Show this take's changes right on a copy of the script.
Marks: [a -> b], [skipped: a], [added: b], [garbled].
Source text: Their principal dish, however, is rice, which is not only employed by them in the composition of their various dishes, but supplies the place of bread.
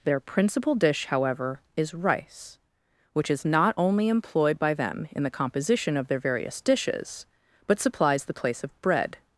Their principal dish, however, is rice, which is not only employed by them in the composition of their various dishes, but supplies the place of bread.